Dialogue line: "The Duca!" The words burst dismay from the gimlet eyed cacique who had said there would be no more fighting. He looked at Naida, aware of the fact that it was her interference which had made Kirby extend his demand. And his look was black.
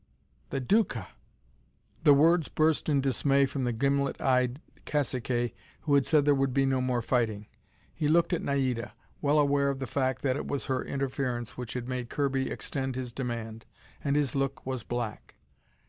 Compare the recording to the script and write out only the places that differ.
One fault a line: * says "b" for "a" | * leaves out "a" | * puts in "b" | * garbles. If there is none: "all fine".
* puts in "in"
* puts in "well"